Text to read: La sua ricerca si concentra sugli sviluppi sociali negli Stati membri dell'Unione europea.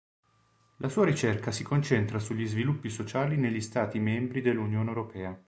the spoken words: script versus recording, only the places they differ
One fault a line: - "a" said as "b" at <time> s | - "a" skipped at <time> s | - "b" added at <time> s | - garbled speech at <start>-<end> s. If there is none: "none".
none